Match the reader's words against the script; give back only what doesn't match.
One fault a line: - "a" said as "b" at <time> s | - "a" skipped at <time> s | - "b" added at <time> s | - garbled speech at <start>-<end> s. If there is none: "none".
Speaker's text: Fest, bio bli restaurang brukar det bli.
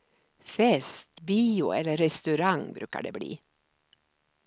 - "bli" said as "eller" at 1.7 s